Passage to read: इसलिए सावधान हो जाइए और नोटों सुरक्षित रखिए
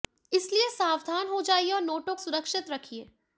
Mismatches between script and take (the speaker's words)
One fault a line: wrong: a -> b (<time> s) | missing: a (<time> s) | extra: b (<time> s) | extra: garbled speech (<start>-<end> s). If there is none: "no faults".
no faults